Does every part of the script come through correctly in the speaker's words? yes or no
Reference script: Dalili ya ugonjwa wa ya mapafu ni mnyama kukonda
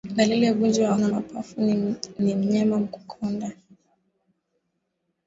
yes